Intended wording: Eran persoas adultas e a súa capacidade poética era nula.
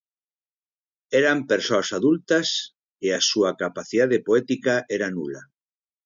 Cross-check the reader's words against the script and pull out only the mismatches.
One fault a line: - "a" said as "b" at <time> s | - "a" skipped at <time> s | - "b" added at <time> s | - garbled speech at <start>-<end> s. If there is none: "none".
none